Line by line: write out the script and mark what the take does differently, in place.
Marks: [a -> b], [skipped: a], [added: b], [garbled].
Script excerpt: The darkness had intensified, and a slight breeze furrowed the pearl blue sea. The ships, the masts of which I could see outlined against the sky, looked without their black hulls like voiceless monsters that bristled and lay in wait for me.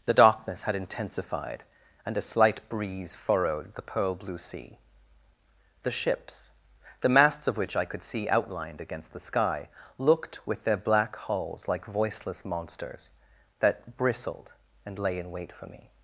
The darkness had intensified, and a slight breeze furrowed the pearl blue sea. The ships, the masts of which I could see outlined against the sky, looked [without -> with] their black hulls like voiceless monsters that bristled and lay in wait for me.